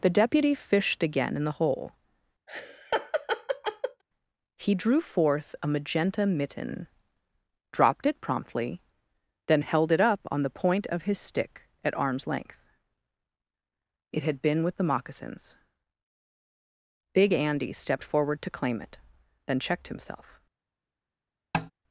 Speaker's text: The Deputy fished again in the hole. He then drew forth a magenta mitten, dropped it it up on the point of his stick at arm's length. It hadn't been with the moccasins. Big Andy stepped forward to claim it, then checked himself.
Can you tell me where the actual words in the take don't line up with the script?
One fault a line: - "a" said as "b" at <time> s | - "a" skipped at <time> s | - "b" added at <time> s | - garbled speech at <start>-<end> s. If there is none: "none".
- "then" skipped at 4.7 s
- "promptly then held" added at 8.2 s
- "hadn't" said as "had" at 14.2 s